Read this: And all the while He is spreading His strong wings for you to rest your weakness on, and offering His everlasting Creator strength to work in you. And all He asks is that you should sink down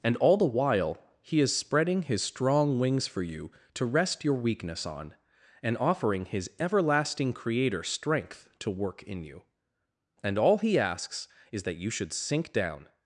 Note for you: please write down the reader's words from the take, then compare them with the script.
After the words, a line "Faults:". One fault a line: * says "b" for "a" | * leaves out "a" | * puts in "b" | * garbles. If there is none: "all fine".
And all the while He is spreading His strong wings for you to rest your weakness on, and offering His everlasting Creator strength to work in you. And all He asks is that you should sink down
Faults:
all fine